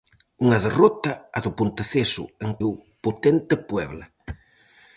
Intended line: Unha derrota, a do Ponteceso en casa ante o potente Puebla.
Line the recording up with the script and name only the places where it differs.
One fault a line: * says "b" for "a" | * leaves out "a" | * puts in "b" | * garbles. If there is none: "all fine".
* leaves out "casa ante"